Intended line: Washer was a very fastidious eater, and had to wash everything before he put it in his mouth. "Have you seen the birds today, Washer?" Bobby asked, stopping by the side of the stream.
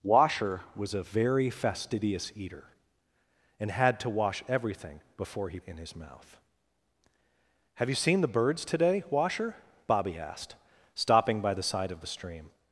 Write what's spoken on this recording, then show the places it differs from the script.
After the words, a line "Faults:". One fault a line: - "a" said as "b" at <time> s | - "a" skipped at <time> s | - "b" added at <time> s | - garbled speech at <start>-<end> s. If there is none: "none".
Washer was a very fastidious eater, and had to wash everything before he in his mouth. "Have you seen the birds today, Washer?" Bobby asked, stopping by the side of the stream.
Faults:
- "put it" skipped at 5.6 s